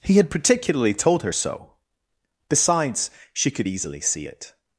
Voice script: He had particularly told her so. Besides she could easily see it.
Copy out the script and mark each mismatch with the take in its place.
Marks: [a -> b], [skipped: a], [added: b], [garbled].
He had particularly told her so. Besides she could easily see it.